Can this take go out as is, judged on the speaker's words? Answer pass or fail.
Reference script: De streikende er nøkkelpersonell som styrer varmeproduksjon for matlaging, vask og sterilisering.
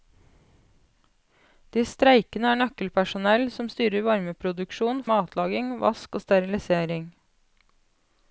fail